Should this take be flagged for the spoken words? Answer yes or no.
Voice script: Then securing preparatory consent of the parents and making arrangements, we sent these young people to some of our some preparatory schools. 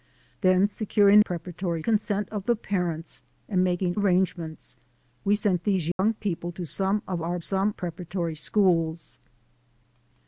no